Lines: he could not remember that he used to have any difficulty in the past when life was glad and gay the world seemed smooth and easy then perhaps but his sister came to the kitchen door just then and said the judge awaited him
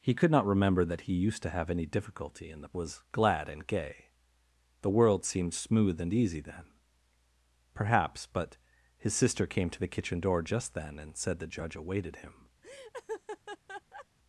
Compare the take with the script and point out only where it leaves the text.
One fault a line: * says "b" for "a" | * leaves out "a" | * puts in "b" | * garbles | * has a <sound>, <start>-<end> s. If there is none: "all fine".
* leaves out "past when life"
* has a laugh, 12.6-14.1 s